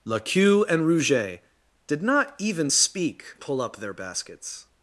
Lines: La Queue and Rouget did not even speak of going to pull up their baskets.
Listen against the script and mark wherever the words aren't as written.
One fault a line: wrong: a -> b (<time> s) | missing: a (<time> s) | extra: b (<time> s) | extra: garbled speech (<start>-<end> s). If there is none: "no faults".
missing: of going to (3.2 s)